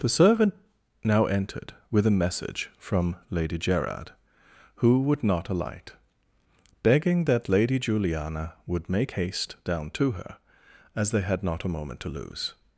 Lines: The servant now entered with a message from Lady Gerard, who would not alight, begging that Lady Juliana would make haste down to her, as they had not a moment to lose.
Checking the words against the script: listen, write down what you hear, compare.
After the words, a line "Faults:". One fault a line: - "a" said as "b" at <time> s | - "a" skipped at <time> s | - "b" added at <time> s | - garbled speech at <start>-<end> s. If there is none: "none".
The servant now entered with a message from Lady Gerard, who would not alight, begging that Lady Juliana would make haste down to her, as they had not a moment to lose.
Faults:
none